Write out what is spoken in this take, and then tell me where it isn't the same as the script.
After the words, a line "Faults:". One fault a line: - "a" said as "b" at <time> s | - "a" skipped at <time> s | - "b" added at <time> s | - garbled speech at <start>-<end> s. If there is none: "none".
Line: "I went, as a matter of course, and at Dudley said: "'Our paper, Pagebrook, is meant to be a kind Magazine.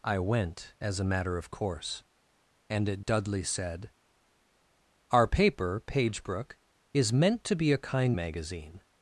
"I went, as a matter of course, and at Dudley said: "'Our paper, Pagebrook, is meant to be a kind Magazine.
Faults:
none